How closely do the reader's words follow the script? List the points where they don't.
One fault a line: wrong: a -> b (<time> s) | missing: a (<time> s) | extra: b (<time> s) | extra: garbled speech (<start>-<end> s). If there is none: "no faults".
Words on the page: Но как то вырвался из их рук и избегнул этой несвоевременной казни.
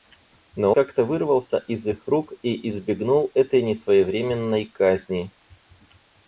no faults